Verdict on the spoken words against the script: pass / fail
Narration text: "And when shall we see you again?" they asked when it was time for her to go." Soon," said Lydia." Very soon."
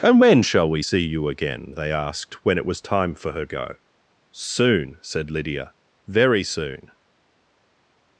fail